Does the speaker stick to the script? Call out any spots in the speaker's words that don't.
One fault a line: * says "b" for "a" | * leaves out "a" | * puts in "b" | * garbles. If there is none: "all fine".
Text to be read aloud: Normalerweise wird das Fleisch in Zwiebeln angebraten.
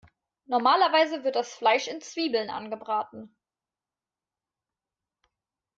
all fine